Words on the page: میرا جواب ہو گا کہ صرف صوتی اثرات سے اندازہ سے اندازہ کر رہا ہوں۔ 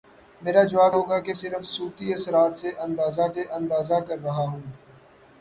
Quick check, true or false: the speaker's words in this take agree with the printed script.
true